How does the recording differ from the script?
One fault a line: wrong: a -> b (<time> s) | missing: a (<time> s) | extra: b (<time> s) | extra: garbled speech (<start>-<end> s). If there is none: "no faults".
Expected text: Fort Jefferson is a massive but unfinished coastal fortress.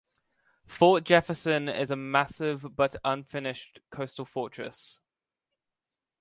no faults